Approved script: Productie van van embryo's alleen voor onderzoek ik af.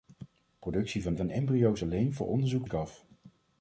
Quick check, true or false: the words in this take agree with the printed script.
true